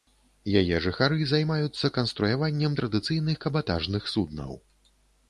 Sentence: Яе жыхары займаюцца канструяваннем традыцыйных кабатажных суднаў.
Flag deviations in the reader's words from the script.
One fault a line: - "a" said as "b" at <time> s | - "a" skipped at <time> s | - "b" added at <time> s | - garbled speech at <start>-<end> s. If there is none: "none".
none